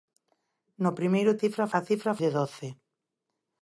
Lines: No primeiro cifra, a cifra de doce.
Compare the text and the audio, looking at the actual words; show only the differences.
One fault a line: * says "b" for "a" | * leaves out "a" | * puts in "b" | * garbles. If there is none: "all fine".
all fine